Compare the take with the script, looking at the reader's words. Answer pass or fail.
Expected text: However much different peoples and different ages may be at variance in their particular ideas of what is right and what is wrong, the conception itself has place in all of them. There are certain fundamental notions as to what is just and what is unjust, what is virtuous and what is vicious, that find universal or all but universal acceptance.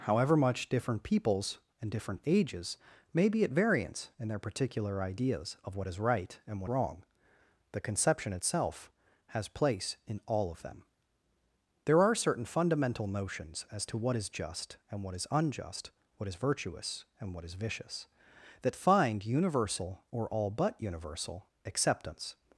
fail